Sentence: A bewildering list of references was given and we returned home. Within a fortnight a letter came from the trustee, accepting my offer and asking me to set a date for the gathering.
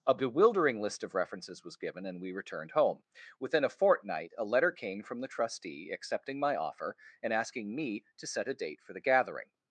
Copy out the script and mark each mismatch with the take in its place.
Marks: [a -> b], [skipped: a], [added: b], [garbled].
A bewildering list of references was given and we returned home. Within a fortnight a letter came from the trustee, accepting my offer and asking me to set a date for the gathering.